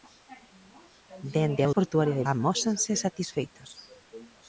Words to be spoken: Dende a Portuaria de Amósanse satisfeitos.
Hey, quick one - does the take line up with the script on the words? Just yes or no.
yes